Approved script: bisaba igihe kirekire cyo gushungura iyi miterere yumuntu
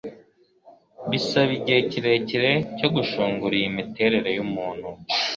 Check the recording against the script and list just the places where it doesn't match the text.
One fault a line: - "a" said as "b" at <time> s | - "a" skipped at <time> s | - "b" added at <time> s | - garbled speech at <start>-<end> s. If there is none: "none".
none